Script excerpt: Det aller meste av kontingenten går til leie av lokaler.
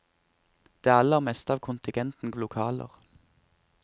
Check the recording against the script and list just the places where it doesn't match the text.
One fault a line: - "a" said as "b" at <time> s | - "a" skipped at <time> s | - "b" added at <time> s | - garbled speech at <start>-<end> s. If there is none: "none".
- "går til leie" skipped at 2.3 s